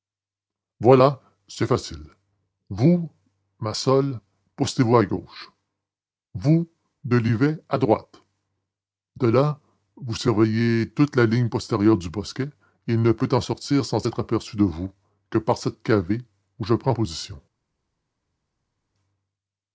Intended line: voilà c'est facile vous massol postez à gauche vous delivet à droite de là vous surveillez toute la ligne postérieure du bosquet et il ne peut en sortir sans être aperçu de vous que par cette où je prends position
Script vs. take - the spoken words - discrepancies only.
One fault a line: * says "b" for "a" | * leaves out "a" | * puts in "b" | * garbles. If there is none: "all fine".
* puts in "vous"
* puts in "cavée"